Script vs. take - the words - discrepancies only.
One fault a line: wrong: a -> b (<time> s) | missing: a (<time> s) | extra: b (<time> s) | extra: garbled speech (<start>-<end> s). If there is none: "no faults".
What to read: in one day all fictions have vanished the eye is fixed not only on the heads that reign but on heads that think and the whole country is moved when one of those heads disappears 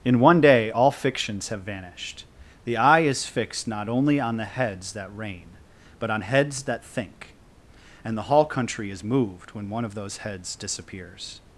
wrong: whole -> hall (8.2 s)